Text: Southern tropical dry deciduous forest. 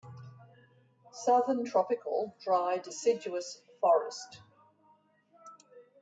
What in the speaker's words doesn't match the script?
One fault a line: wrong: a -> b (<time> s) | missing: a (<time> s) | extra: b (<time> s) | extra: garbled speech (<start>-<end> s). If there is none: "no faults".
no faults